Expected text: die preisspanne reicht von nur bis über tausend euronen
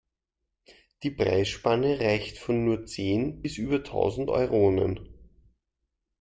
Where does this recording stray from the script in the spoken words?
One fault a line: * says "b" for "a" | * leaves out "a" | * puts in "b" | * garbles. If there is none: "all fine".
* puts in "zehn"